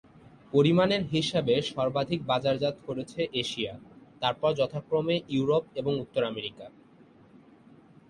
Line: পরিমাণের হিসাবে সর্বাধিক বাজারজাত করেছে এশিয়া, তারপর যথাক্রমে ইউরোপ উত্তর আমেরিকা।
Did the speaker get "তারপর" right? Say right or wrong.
right